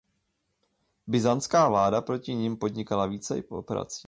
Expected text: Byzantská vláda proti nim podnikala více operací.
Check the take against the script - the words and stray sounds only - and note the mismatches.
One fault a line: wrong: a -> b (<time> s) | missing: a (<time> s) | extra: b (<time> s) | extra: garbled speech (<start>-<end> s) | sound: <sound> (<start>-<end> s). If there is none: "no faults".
no faults